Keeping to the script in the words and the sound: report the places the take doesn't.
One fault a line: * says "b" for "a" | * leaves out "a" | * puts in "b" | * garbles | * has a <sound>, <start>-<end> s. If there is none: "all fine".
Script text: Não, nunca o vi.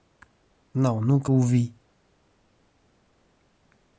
all fine